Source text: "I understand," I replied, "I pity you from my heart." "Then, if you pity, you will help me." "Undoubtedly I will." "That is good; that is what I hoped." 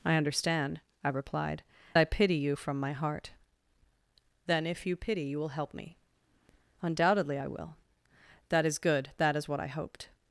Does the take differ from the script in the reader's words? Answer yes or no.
no